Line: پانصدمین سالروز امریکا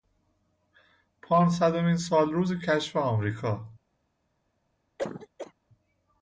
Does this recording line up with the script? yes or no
no